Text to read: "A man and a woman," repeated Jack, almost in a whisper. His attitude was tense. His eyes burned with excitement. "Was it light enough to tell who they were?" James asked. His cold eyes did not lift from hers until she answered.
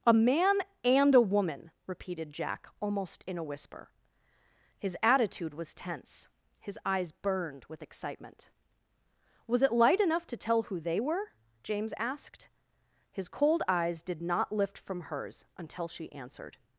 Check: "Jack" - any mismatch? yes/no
no